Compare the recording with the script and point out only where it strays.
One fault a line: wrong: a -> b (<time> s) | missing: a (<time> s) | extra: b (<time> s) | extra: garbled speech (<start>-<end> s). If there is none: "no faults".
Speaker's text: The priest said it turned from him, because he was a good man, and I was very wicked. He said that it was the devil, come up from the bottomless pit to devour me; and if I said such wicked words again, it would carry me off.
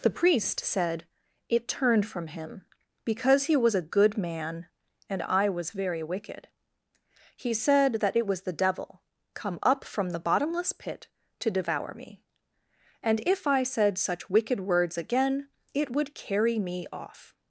no faults